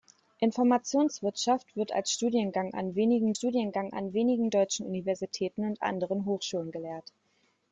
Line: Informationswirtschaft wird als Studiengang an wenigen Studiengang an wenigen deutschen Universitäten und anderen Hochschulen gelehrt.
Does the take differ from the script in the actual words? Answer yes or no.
no